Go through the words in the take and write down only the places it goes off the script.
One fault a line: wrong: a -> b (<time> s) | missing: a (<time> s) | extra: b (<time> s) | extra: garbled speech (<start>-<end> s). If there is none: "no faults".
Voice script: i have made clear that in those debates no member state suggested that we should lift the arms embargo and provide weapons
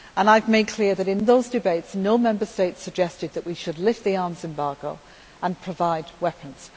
no faults